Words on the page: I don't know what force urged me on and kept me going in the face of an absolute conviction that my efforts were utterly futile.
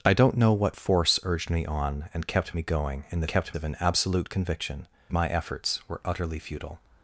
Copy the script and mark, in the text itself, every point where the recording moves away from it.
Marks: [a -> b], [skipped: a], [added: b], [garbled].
I don't know what force urged me on and kept me going in the [face -> kept] of an absolute conviction [skipped: that] my efforts were utterly futile.